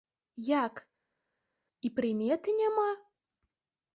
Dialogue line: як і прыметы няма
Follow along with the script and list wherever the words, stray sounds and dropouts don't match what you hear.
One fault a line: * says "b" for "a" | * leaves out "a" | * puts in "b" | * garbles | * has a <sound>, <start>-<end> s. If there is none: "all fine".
all fine